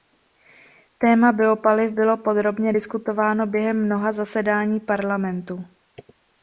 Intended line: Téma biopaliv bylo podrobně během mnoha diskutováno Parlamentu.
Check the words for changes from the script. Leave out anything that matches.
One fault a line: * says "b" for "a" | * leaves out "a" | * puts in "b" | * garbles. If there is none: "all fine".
* puts in "diskutováno"
* says "zasedání" for "diskutováno"